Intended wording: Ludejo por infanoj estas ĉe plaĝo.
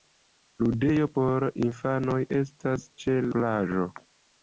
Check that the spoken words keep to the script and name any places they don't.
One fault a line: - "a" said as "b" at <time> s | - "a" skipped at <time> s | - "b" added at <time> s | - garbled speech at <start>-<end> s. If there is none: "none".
none